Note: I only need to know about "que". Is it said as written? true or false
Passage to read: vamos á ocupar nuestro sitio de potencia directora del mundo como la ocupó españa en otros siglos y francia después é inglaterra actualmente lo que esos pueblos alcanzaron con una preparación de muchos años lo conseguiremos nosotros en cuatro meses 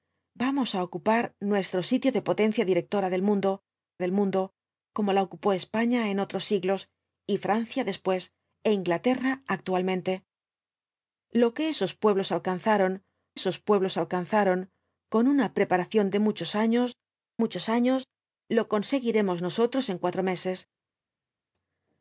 true